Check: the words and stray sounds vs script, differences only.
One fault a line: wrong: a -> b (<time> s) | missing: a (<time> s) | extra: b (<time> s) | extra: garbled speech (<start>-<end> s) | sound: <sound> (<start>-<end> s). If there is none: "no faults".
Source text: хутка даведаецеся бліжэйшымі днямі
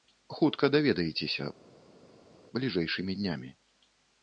no faults